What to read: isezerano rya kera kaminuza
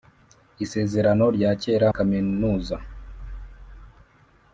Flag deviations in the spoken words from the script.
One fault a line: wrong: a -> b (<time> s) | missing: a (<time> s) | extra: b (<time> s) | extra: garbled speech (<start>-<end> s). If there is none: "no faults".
no faults